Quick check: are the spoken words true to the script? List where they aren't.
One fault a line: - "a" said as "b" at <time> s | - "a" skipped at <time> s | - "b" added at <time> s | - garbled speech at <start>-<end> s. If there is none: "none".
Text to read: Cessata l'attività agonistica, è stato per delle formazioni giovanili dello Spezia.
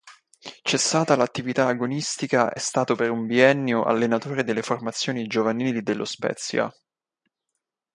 - "un biennio allenatore" added at 3.1 s